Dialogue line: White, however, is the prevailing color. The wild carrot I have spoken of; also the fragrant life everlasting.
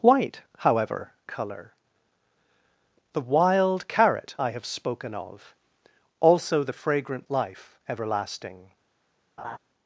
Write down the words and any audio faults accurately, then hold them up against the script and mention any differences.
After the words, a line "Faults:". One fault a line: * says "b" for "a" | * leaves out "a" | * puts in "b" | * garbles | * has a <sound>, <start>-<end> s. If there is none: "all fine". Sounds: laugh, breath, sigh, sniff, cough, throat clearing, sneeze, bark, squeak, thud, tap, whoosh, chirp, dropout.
White, however, color. The wild carrot I have spoken of; also the fragrant life everlasting.
Faults:
* leaves out "is the prevailing"
* has a laugh, 9.4-9.6 s